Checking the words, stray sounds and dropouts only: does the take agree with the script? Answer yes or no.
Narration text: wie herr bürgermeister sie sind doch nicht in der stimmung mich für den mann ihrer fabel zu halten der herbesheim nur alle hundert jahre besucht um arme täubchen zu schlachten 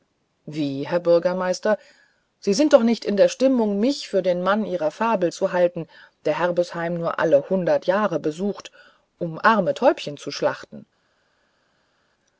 yes